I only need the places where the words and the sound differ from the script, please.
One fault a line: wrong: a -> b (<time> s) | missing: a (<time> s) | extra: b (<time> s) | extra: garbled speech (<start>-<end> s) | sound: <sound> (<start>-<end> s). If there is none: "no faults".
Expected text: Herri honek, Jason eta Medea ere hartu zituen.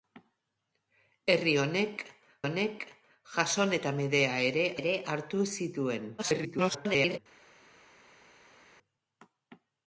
extra: honek (2.5 s)
extra: ere (4.8 s)
extra: garbled speech (6.2-7.2 s)